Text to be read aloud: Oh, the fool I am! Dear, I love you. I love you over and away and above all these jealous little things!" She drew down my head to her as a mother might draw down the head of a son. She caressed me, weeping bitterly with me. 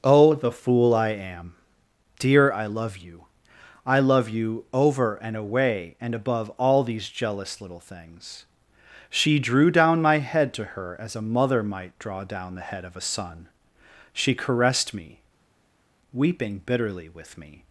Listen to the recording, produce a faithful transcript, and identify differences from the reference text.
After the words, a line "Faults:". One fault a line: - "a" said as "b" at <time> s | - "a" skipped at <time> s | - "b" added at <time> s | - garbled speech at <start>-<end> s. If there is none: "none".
Oh, the fool I am! Dear, I love you. I love you over and away and above all these jealous little things!" She drew down my head to her as a mother might draw down the head of a son. She caressed me, weeping bitterly with me.
Faults:
none